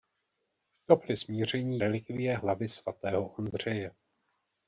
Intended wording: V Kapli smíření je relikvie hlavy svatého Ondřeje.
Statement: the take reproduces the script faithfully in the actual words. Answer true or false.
false